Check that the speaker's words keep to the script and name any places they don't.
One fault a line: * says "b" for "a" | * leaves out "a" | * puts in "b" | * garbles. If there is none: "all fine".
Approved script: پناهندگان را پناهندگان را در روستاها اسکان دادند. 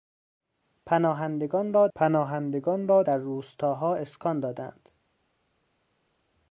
all fine